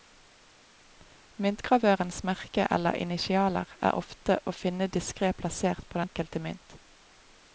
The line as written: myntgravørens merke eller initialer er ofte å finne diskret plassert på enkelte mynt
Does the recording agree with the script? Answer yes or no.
yes